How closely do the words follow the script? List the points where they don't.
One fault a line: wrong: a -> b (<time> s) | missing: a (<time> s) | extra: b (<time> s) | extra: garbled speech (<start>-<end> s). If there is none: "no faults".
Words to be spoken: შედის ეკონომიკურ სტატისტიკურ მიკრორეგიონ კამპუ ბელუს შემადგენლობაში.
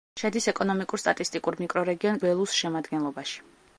missing: კამპუ (2.2 s)